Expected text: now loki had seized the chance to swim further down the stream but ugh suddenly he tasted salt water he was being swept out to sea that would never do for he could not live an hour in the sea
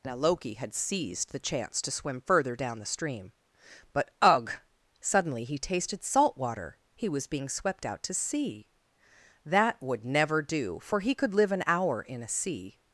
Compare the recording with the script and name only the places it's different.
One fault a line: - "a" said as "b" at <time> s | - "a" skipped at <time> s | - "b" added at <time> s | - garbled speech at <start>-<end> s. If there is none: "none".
- "not" skipped at 11.3 s
- "the" said as "a" at 12.2 s